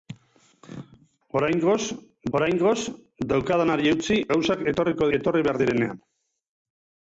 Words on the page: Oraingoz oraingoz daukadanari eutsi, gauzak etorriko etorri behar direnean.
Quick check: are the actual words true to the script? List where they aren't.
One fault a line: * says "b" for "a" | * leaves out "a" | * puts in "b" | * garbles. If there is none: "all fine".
all fine